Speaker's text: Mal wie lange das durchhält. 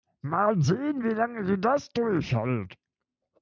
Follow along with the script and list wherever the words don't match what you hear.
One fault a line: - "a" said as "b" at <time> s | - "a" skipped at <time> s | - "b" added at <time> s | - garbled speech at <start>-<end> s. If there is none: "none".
- "sehen" added at 0.6 s
- "sie" added at 1.5 s